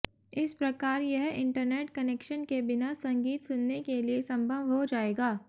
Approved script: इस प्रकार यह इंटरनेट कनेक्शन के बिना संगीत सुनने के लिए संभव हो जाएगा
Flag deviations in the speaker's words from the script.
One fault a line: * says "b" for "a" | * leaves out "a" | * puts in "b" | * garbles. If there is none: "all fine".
all fine